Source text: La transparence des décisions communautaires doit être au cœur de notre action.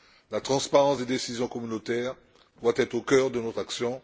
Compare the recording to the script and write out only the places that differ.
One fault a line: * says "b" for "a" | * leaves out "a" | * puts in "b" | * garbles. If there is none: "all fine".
all fine